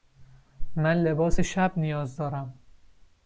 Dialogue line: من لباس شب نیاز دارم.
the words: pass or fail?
pass